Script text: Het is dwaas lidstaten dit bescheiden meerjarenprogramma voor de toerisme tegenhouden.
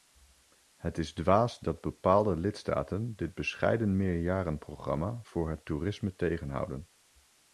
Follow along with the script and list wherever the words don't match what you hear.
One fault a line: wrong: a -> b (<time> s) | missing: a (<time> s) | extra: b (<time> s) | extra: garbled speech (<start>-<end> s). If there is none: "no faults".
extra: dat bepaalde (1.6 s)
wrong: de -> het (5.5 s)